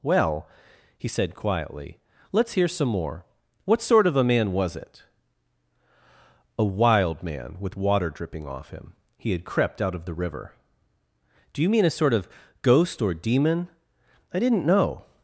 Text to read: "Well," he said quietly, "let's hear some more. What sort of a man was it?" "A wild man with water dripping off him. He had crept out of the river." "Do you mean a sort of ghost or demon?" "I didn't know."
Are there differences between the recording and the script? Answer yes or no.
no